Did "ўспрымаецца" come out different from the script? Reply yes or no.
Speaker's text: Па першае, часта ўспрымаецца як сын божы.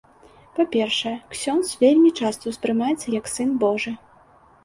no